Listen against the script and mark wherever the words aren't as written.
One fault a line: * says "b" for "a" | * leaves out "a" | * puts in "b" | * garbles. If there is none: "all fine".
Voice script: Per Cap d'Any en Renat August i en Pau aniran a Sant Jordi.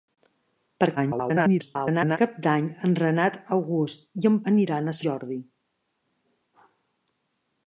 * garbles
* leaves out "Pau"
* leaves out "Sant"